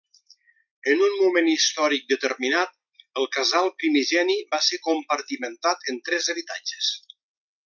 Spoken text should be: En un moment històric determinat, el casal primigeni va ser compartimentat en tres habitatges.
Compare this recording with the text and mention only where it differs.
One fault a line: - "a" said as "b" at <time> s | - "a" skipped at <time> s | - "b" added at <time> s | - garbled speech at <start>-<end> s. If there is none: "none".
none